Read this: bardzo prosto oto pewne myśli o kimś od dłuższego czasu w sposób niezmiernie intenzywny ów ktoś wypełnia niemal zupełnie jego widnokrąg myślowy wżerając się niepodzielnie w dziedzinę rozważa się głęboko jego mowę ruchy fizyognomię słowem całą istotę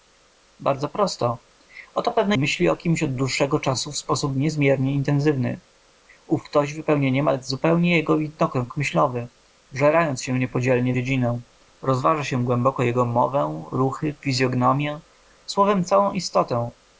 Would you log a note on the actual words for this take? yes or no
no